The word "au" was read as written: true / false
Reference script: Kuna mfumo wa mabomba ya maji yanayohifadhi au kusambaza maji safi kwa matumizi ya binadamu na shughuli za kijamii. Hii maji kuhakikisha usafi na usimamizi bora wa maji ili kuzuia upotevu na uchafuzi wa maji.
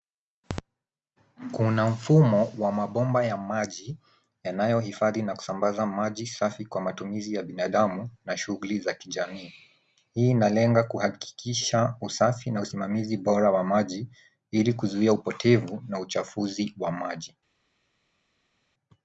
false